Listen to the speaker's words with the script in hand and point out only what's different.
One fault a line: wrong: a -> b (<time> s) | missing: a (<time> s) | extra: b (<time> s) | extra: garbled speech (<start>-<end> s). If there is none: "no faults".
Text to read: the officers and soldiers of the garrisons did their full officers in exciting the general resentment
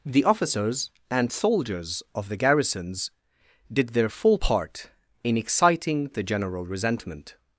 wrong: officers -> part (4.3 s)